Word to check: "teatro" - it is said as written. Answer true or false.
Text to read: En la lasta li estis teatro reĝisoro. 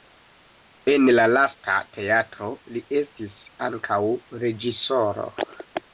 false